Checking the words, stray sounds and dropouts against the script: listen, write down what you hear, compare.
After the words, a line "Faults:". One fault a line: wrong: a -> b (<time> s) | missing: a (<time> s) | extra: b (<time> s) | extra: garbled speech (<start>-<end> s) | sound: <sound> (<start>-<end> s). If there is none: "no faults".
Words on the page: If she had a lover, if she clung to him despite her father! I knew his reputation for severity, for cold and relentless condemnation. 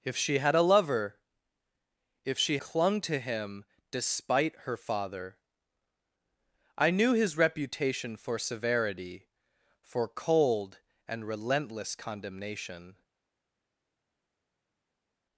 If she had a lover, if she clung to him despite her father! I knew his reputation for severity, for cold and relentless condemnation.
Faults:
no faults